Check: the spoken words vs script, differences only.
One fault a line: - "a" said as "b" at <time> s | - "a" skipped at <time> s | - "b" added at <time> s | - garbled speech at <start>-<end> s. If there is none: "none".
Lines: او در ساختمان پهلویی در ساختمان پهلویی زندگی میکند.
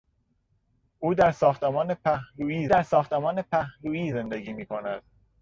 none